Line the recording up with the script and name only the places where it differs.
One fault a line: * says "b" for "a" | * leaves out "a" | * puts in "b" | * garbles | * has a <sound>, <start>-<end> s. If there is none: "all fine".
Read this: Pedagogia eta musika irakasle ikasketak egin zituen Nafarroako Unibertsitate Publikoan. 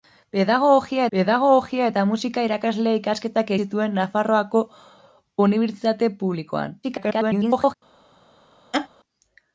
* puts in "pedagogia"
* leaves out "egin"
* garbles
* has a laugh, 8.7-8.9 s